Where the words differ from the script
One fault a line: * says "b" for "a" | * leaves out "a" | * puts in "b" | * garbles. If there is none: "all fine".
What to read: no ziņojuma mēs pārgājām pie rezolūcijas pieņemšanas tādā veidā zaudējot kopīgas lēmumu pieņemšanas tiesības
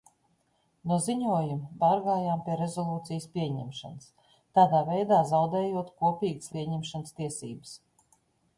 * leaves out "mēs"
* leaves out "lēmumu"